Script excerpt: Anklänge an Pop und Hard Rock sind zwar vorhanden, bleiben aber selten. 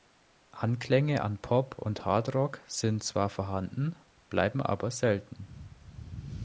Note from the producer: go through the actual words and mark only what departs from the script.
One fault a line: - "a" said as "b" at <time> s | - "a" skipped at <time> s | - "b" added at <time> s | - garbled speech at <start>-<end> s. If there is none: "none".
none